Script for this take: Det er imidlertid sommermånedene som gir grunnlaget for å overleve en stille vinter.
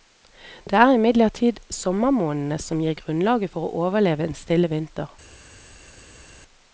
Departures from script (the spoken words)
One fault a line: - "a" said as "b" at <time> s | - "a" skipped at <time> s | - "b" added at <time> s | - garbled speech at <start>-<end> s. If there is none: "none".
none